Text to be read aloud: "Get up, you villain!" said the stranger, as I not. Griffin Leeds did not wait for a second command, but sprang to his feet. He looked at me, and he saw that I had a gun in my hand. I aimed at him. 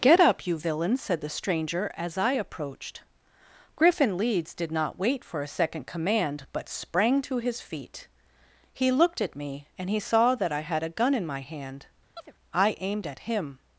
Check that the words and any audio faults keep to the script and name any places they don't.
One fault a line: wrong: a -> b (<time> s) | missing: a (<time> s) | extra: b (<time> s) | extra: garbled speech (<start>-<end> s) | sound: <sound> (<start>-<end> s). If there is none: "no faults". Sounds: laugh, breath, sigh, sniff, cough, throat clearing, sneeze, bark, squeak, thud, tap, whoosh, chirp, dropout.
wrong: not -> approached (2.3 s)
sound: chirp (12.2-12.3 s)